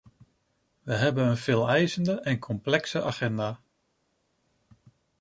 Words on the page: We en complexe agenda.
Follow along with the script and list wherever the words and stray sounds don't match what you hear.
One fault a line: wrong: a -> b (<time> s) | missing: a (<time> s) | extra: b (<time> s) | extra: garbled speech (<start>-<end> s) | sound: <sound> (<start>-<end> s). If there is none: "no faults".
extra: hebben een veeleisende (0.9 s)